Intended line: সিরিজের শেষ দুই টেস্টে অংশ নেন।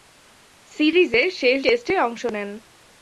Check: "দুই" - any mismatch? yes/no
yes